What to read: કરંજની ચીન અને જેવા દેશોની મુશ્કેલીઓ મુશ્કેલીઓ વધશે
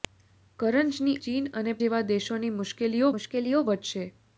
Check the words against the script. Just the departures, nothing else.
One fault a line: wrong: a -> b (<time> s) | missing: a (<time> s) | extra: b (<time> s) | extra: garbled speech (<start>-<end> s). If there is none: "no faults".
no faults